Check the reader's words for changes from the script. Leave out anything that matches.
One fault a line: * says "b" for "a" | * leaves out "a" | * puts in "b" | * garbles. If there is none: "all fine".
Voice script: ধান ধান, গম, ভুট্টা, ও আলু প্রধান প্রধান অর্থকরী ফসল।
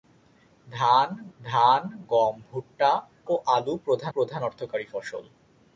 all fine